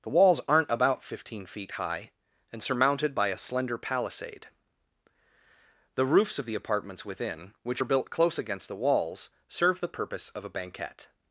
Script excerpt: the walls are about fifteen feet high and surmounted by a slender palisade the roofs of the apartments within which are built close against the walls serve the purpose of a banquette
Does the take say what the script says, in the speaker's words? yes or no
no